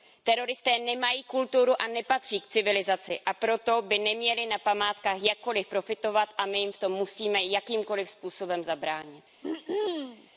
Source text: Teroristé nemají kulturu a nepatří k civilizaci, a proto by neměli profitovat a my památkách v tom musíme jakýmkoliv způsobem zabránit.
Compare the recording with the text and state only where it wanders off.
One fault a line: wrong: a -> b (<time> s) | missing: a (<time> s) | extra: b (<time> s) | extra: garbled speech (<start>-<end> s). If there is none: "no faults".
extra: na památkách jakkoliv (4.5 s)
wrong: památkách -> jim (6.6 s)